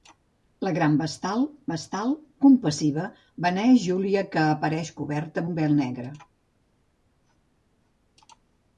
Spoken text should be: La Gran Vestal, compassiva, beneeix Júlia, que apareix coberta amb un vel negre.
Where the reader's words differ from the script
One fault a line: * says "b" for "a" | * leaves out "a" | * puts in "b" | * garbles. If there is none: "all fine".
* puts in "Vestal"
* leaves out "amb"